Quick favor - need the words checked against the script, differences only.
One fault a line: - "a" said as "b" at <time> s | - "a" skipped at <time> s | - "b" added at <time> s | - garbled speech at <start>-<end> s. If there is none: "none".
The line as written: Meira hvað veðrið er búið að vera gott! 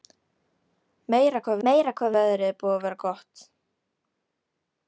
- "meira hvað" added at 1.7 s